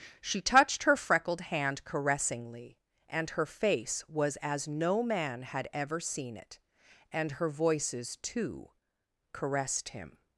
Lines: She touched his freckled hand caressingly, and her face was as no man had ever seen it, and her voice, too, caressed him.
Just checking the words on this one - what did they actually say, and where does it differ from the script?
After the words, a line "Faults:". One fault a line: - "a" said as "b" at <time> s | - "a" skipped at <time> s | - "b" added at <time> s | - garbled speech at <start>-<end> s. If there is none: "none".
She touched her freckled hand caressingly, and her face was as no man had ever seen it, and her voices, too, caressed him.
Faults:
- "his" said as "her" at 0.8 s
- "voice" said as "voices" at 7.5 s